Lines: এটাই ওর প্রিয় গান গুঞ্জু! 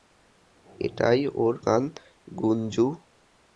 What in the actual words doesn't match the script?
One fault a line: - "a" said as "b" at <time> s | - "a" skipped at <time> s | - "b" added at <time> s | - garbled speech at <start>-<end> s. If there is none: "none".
- "প্রিয়" skipped at 1.5 s